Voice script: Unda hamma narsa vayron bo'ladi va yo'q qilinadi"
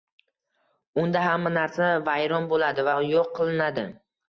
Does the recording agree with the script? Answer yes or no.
yes